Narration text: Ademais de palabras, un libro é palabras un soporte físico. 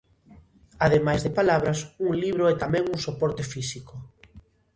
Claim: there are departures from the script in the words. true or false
true